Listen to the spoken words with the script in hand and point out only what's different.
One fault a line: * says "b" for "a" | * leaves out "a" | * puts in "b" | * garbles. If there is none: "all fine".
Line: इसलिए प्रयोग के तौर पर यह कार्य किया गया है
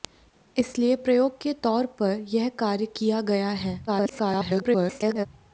* garbles